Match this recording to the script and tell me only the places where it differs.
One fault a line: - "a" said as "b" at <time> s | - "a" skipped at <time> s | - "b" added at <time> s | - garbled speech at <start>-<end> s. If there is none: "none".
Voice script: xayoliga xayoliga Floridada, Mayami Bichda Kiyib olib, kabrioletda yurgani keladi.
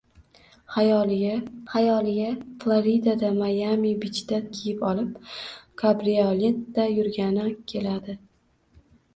none